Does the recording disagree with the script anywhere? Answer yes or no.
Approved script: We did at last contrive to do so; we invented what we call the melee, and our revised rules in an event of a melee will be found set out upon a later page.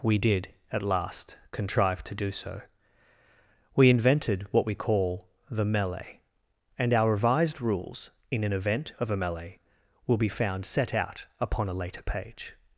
no